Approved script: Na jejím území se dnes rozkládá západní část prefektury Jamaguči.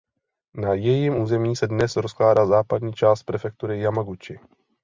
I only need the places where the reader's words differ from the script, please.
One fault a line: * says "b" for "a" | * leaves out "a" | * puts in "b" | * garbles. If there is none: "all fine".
all fine